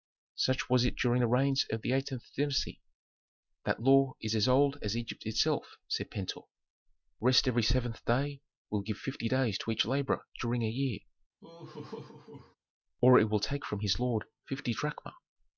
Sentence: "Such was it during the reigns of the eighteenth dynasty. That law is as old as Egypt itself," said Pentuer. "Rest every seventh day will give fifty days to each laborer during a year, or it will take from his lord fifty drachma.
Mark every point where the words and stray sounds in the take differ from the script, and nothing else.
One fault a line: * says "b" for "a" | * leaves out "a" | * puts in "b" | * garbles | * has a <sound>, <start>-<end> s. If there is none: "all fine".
* has a laugh, 11.4-12.6 s